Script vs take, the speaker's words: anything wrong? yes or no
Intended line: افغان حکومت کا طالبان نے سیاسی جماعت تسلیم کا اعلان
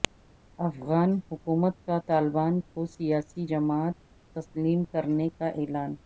yes